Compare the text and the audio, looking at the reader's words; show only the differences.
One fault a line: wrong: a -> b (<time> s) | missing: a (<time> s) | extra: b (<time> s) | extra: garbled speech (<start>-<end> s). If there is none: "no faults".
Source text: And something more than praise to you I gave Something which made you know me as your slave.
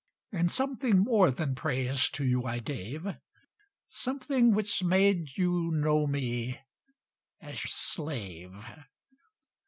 missing: your (7.6 s)